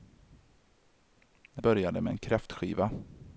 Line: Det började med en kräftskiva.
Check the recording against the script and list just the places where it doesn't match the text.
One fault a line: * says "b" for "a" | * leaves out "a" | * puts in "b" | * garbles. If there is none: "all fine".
all fine